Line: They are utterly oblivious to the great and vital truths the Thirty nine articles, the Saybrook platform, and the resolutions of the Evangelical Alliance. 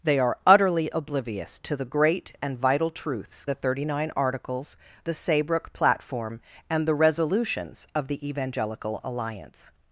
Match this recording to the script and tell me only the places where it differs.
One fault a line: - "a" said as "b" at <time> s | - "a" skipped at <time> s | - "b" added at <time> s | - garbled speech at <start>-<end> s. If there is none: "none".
none